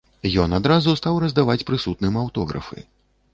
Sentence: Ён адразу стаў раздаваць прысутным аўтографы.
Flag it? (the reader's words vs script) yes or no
no